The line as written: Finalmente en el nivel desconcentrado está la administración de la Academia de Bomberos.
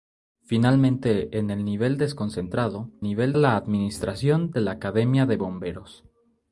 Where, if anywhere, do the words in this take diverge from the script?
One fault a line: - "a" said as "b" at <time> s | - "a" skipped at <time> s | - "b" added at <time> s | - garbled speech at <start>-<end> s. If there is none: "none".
- "está" said as "nivel" at 3.0 s